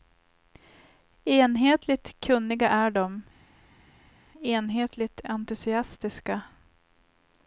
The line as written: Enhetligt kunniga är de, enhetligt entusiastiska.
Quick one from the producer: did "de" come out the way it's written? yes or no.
yes